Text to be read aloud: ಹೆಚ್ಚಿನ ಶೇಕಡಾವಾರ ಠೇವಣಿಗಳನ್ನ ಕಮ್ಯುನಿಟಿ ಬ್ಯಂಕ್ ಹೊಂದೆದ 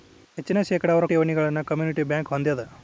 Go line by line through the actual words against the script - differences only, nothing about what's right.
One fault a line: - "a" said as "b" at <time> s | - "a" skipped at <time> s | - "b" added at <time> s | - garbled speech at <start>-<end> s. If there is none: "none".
none